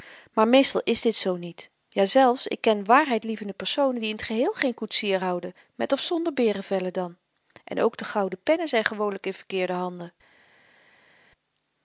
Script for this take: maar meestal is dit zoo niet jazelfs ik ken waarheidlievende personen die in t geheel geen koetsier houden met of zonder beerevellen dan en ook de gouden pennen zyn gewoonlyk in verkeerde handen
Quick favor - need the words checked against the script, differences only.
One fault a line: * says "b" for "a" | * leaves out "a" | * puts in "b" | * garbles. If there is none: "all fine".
all fine